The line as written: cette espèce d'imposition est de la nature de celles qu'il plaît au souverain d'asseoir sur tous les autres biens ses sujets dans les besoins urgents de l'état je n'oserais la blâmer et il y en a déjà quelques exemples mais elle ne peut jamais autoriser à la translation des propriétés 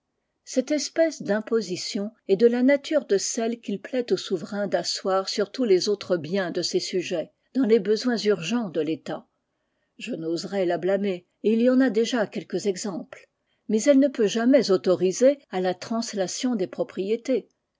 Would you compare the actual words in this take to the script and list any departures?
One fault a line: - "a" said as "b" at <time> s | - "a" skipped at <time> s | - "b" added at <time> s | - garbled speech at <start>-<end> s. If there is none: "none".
- "de" added at 6.5 s